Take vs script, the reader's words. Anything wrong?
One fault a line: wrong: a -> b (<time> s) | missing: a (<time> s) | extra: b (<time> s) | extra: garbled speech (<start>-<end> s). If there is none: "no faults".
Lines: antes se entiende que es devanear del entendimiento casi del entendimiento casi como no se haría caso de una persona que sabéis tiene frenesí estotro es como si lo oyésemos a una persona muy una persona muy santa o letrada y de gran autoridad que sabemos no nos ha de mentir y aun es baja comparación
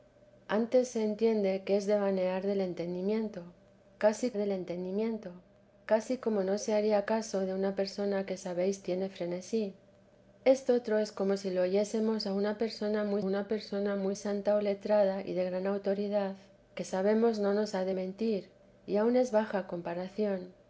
no faults